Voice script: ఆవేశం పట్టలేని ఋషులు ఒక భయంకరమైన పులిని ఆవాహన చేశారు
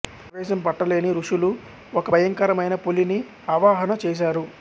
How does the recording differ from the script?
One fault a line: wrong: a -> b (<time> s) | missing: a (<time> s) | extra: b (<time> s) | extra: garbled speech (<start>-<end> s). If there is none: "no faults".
no faults